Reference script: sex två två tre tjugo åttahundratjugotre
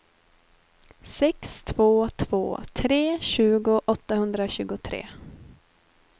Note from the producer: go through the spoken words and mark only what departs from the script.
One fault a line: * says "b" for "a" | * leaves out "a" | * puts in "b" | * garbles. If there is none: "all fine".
all fine